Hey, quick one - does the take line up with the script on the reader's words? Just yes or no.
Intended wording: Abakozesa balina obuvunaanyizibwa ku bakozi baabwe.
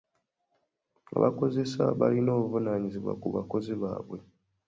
yes